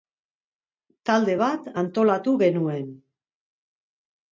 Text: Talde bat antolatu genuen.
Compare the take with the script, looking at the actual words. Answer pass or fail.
pass